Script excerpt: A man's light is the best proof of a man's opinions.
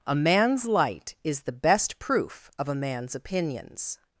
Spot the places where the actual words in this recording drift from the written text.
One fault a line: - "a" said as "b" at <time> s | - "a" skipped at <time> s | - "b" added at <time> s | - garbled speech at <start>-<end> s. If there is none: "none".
none